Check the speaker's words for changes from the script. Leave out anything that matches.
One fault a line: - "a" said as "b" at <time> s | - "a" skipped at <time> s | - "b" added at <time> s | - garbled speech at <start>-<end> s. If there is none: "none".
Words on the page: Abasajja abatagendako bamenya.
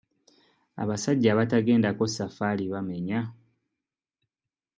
- "safaali" added at 2.1 s